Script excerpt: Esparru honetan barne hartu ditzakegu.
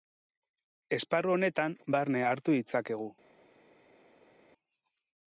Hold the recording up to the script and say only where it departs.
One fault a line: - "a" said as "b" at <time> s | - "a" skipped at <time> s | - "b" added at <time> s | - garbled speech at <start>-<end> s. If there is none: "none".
none